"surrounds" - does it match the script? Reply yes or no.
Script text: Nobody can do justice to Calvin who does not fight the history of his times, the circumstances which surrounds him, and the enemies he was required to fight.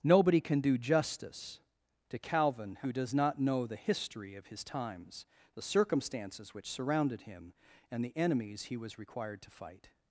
no